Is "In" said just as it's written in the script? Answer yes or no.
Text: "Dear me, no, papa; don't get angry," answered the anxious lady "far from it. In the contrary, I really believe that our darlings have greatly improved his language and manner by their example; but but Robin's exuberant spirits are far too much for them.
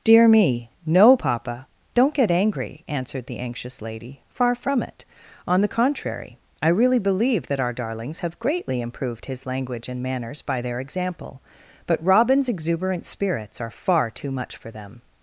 no